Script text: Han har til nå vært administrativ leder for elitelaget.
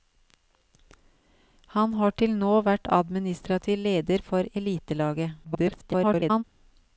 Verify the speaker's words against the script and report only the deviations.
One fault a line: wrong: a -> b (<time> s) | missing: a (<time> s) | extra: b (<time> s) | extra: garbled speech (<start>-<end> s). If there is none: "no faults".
extra: garbled speech (5.4-6.4 s)